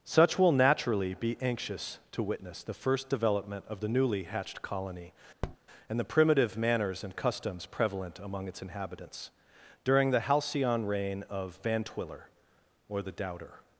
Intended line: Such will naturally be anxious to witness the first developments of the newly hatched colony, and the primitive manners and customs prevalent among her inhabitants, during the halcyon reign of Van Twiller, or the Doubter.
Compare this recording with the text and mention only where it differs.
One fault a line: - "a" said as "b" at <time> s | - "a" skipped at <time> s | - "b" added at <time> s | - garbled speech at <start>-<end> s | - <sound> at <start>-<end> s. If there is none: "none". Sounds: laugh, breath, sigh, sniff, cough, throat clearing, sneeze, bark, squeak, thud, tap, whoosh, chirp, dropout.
- "developments" said as "development" at 3.1 s
- tap at 5.4-5.6 s
- "her" said as "its" at 8.5 s